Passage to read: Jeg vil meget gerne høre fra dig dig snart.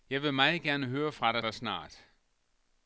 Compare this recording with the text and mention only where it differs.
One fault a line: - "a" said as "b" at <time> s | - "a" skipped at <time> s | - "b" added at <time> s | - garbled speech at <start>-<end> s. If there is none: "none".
none